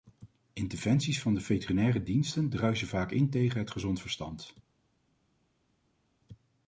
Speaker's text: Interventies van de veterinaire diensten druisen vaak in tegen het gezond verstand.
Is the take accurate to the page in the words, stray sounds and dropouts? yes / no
yes